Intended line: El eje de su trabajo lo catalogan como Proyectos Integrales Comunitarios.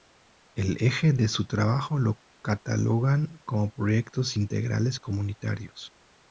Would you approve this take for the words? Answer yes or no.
yes